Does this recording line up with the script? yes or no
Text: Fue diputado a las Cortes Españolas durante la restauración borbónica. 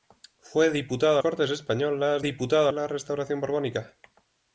no